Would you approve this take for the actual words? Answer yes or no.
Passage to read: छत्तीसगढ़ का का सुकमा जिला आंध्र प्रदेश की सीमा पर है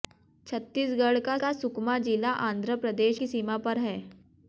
yes